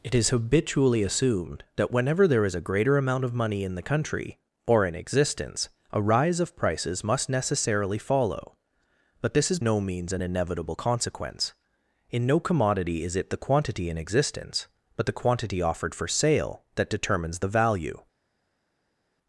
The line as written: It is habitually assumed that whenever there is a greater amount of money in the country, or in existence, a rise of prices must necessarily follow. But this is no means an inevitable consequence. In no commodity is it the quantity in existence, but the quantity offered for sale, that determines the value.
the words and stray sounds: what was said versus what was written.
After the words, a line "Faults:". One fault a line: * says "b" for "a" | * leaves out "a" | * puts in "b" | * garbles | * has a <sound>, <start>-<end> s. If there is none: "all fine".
It is habitually assumed that whenever there is a greater amount of money in the country, or in existence, a rise of prices must necessarily follow. But this is no means an inevitable consequence. In no commodity is it the quantity in existence, but the quantity offered for sale, that determines the value.
Faults:
all fine